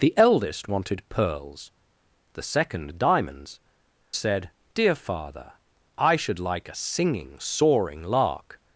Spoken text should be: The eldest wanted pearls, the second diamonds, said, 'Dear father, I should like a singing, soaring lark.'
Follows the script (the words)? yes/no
yes